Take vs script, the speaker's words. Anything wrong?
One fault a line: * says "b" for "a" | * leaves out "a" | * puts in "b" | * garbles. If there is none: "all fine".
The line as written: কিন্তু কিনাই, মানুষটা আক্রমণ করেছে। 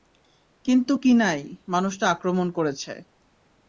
all fine